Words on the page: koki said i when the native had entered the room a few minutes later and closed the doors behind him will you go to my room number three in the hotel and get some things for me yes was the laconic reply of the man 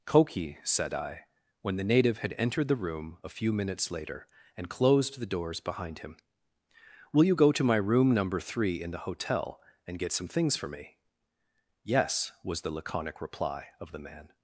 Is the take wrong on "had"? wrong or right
right